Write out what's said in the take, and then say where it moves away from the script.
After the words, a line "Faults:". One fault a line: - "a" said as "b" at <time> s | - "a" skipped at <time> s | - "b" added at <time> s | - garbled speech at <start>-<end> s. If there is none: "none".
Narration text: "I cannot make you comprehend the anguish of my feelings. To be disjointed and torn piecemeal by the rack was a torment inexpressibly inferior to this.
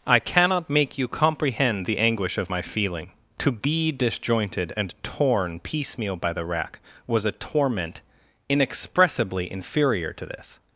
"I cannot make you comprehend the anguish of my feeling. To be disjointed and torn piecemeal by the rack was a torment inexpressibly inferior to this.
Faults:
- "feelings" said as "feeling" at 2.6 s